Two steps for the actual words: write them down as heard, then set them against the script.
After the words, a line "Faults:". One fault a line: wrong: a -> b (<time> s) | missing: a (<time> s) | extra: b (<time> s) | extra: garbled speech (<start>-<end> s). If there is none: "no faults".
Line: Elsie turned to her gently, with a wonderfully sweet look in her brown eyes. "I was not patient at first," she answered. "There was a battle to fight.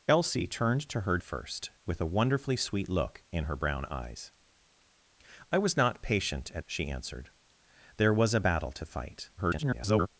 Elsie turned to her first, with a wonderfully sweet look in her brown eyes. "I was not patient at," she answered. "There was a battle to fight. [garbled]
Faults:
wrong: gently -> first (1.2 s)
missing: first (6.7 s)
extra: garbled speech (9.4-10.1 s)